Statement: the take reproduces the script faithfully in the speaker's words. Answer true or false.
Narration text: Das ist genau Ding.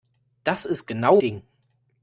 true